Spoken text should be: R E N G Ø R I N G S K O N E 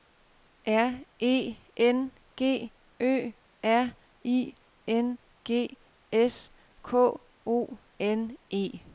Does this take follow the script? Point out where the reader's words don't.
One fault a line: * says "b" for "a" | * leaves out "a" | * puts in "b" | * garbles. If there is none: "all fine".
all fine